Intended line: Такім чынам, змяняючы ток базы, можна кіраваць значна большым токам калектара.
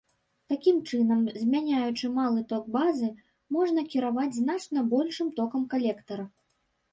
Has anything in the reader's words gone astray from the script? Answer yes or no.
yes